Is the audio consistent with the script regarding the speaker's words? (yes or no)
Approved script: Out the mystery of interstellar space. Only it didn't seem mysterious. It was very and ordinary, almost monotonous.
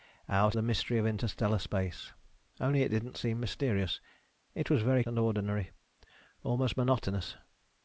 yes